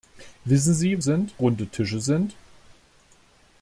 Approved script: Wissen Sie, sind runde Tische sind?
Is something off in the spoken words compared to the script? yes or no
no